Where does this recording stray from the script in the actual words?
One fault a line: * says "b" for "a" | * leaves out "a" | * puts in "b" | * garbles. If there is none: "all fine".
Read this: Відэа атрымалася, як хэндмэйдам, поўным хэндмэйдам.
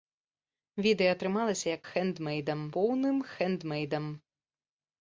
all fine